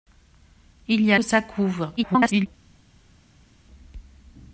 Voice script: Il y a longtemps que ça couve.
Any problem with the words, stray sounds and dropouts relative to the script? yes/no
yes